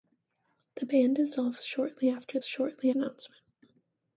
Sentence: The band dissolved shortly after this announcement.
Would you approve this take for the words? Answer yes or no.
no